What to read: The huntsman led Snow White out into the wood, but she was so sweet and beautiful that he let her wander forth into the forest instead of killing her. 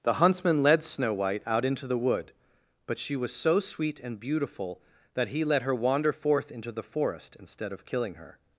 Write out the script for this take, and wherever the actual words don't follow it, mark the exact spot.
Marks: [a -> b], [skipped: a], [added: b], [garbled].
The huntsman led Snow White out into the wood, but she was so sweet and beautiful that he let her wander forth into the forest instead of killing her.